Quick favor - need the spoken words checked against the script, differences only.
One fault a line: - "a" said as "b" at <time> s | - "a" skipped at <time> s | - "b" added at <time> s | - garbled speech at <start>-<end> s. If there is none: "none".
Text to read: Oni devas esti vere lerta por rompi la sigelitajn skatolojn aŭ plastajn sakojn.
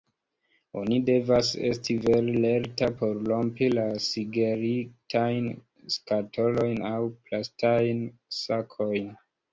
none